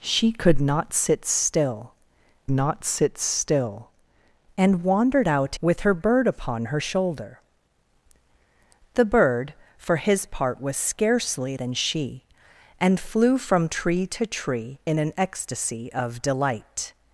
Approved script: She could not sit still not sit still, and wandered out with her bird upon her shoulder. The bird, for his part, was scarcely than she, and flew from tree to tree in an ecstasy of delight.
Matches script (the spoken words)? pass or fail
pass